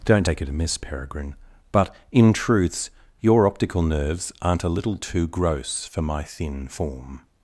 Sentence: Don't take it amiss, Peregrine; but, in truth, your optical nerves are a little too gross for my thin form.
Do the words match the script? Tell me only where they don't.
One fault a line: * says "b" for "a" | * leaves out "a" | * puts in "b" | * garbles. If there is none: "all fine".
* says "truths" for "truth"
* says "aren't" for "are"